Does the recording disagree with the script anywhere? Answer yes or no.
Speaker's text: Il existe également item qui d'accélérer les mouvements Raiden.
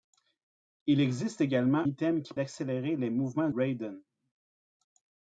no